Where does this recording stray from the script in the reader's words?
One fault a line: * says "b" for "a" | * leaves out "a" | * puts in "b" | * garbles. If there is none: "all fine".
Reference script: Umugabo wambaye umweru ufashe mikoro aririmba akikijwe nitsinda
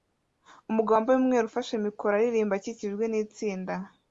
all fine